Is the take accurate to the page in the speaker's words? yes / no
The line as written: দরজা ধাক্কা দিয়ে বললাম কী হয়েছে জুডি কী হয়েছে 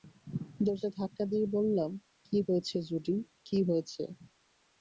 yes